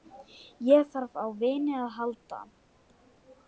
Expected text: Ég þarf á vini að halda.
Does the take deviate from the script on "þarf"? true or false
false